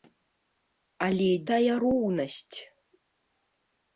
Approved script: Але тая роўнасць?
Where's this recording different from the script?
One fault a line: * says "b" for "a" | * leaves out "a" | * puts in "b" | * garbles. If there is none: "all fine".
all fine